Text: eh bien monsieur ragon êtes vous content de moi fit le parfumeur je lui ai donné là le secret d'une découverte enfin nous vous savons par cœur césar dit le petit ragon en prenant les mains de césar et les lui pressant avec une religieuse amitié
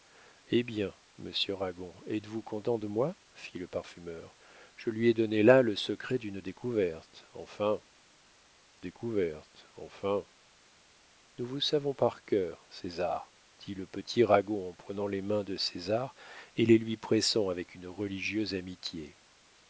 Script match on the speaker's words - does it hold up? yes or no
no